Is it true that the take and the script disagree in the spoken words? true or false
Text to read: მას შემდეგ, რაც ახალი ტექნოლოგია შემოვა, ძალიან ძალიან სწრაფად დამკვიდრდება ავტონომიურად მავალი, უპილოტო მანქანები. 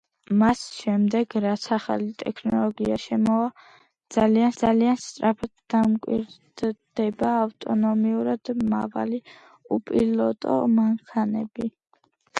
false